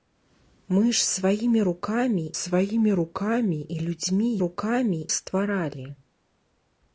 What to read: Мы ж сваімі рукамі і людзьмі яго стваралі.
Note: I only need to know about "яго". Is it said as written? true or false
false